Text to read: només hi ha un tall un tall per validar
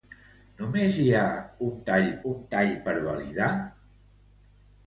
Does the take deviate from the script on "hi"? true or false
false